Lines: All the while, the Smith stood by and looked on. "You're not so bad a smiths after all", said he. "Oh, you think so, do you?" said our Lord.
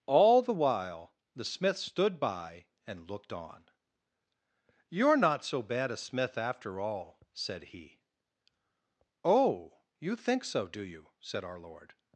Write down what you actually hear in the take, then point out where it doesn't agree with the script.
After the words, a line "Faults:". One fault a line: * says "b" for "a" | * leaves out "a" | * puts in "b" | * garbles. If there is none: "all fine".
All the while, the Smith stood by and looked on. "You're not so bad a smith after all", said he. "Oh, you think so, do you?" said our Lord.
Faults:
* says "smith" for "smiths"